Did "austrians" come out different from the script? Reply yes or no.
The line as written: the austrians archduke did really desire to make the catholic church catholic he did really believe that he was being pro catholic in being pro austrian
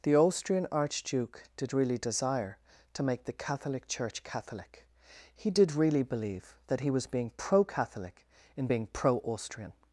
yes